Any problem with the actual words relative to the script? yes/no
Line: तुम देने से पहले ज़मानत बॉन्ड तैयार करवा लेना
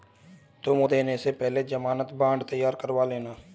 no